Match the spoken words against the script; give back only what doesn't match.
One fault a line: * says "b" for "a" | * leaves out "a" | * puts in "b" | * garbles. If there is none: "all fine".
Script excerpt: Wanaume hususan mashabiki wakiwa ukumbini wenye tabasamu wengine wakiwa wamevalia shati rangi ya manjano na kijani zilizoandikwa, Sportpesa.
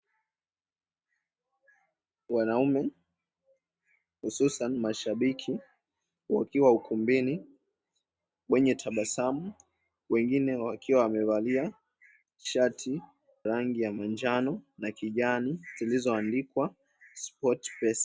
all fine